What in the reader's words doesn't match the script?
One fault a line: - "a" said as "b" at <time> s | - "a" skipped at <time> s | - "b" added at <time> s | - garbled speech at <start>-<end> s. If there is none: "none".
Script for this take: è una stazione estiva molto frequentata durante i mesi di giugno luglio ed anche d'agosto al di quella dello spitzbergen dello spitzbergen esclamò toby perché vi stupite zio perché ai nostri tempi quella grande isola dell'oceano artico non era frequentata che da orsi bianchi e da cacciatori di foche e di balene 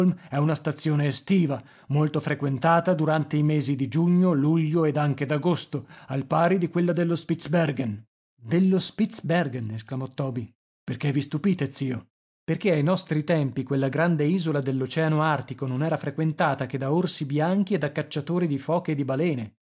- "pari" added at 6.2 s